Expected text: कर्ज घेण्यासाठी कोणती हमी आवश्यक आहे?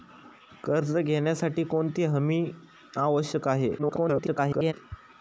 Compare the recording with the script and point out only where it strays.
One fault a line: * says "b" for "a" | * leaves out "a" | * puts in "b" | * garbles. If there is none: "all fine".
* garbles